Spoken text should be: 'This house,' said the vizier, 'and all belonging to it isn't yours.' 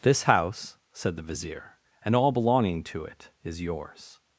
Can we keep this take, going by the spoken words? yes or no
no